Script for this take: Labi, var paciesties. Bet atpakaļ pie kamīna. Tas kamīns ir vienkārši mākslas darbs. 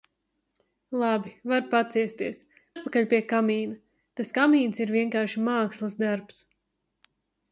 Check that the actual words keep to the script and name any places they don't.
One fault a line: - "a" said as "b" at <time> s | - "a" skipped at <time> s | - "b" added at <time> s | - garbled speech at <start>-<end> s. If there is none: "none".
- "Bet" skipped at 2.4 s